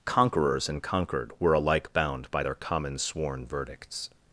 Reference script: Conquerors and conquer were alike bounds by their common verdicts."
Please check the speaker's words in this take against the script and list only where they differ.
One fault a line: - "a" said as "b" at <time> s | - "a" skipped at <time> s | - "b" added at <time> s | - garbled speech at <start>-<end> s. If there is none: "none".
- "conquer" said as "conquered" at 0.8 s
- "bounds" said as "bound" at 1.9 s
- "sworn" added at 3.0 s